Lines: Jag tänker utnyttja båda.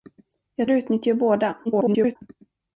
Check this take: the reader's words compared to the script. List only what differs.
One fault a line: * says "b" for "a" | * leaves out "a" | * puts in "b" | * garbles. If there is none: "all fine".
* leaves out "tänker"
* garbles